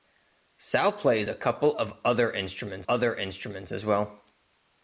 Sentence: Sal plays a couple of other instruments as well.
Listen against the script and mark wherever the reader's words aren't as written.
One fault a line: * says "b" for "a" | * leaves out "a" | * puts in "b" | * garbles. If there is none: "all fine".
* puts in "other instruments"